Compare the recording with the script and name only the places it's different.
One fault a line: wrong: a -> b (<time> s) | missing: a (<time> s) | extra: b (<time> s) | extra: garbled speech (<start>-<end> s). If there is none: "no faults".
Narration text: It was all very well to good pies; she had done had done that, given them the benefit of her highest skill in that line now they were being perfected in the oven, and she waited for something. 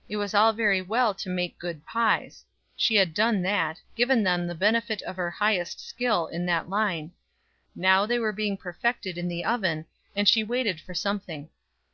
extra: make (1.3 s)
missing: had done (3.4 s)